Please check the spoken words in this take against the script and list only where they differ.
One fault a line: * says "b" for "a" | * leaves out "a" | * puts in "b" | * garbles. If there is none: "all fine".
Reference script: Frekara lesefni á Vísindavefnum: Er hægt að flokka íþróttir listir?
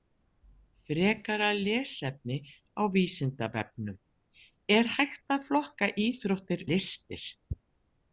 all fine